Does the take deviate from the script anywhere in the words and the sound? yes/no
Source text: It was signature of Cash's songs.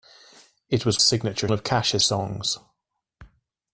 no